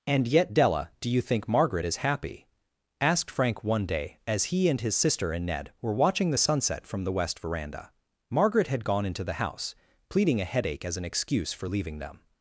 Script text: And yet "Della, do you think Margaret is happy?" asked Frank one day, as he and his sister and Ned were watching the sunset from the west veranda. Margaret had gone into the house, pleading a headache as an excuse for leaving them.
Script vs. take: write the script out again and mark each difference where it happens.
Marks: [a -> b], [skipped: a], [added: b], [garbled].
And yet "Della, do you think Margaret is happy?" asked Frank one day, as he and his sister and Ned were watching the sunset from the west veranda. Margaret had gone into the house, pleading a headache as an excuse for leaving them.